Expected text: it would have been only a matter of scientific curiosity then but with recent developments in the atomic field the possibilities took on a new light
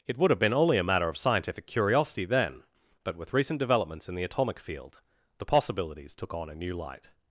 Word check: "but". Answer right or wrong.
right